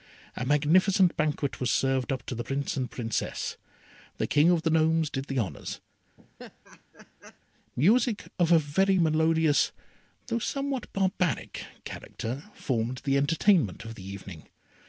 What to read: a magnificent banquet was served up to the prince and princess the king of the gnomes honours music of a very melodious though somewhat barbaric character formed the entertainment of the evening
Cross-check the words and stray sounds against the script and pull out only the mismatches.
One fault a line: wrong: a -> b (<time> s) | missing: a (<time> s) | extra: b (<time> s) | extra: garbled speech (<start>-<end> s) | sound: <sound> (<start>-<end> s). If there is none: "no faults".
extra: did the (5.1 s)
sound: laugh (6.2-7.4 s)